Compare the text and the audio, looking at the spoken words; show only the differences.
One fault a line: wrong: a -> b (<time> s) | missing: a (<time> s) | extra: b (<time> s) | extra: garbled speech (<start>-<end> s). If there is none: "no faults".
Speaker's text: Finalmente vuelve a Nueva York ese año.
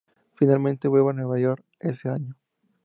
no faults